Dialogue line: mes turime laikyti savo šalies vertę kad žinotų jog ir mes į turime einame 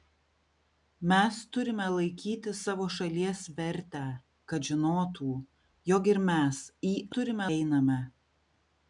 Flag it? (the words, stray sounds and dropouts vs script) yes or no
no